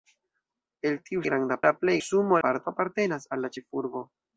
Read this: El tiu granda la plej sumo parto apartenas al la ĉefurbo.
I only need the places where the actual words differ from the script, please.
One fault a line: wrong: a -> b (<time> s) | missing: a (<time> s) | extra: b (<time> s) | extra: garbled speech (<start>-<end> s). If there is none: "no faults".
no faults